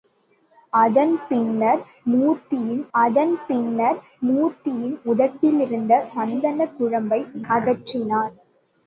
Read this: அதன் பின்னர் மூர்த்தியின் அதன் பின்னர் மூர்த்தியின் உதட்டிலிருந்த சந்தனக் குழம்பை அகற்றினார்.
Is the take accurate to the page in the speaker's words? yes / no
yes